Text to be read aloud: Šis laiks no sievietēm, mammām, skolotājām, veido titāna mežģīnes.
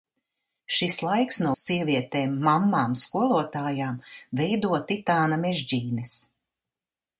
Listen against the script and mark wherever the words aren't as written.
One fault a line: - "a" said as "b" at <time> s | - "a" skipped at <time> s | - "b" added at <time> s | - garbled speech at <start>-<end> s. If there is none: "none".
none